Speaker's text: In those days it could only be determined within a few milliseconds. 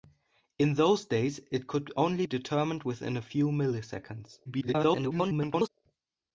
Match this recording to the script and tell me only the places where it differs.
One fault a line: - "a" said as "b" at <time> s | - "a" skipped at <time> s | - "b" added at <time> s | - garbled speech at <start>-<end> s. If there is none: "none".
- "be" skipped at 2.2 s
- garbled speech at 4.4-5.7 s